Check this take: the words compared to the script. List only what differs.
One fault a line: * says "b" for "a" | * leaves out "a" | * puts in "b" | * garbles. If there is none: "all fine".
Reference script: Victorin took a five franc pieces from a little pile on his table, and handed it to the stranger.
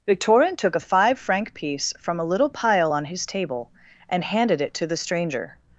* says "piece" for "pieces"